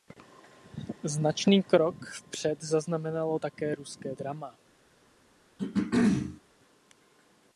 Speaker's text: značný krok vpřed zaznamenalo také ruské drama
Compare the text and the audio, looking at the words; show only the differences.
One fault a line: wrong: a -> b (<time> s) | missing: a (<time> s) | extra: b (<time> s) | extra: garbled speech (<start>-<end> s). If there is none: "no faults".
no faults